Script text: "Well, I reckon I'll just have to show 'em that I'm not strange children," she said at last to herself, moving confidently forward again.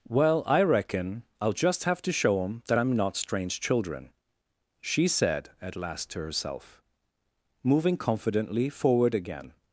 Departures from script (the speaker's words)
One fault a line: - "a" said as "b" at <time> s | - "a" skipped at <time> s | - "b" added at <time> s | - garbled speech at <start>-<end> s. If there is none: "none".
none